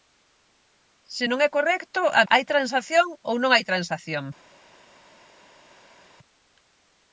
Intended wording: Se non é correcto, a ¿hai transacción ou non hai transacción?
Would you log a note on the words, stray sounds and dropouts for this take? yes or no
no